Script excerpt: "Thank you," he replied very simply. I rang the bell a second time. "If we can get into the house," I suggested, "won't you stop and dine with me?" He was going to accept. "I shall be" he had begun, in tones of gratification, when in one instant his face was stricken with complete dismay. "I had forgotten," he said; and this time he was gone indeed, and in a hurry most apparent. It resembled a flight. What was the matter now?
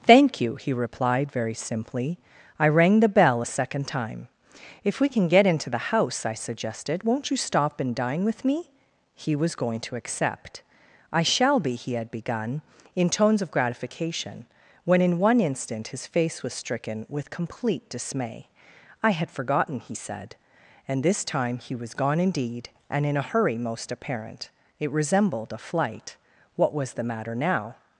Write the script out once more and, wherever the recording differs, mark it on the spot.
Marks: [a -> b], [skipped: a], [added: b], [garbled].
"Thank you," he replied very simply. I rang the bell a second time. "If we can get into the house," I suggested, "won't you stop and dine with me?" He was going to accept. "I shall be" he had begun, in tones of gratification, when in one instant his face was stricken with complete dismay. "I had forgotten," he said; and this time he was gone indeed, and in a hurry most apparent. It resembled a flight. What was the matter now?